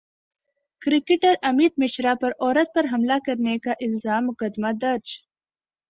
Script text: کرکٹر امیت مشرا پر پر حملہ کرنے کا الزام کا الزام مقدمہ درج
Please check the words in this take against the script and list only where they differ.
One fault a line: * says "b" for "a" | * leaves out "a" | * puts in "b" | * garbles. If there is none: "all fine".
* puts in "عورت"
* leaves out "کا الزام"